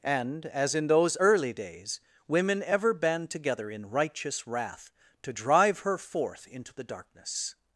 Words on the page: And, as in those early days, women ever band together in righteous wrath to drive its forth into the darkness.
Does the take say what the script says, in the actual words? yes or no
no